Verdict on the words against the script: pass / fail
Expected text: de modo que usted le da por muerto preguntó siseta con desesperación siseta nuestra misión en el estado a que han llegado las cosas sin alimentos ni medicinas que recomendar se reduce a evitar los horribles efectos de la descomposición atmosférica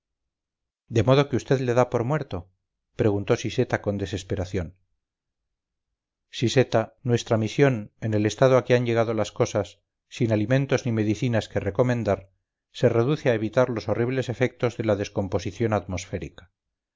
pass